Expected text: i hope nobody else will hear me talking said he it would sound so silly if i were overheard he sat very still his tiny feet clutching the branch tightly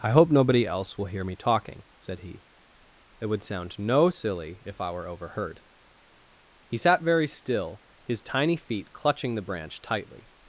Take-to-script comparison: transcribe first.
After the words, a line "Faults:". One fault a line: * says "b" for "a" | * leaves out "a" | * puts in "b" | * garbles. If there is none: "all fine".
i hope nobody else will hear me talking said he it would sound no silly if i were overheard he sat very still his tiny feet clutching the branch tightly
Faults:
* says "no" for "so"